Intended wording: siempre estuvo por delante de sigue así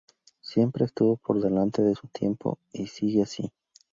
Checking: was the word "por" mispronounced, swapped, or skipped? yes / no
no